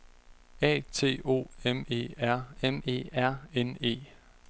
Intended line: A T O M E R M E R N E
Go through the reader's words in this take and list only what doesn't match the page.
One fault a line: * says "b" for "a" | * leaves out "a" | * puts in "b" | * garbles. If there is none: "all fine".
all fine